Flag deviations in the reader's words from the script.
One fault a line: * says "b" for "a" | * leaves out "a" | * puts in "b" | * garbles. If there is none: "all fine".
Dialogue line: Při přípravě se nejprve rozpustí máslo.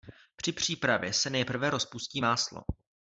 all fine